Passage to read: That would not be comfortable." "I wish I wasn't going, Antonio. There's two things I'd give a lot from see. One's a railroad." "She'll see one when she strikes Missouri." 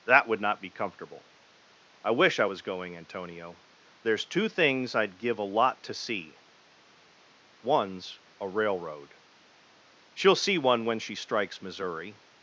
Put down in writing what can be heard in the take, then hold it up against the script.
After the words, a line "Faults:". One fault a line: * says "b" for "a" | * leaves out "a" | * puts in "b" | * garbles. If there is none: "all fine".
That would not be comfortable." "I wish I was going, Antonio. There's two things I'd give a lot to see. One's a railroad." "She'll see one when she strikes Missouri."
Faults:
* says "was" for "wasn't"
* says "to" for "from"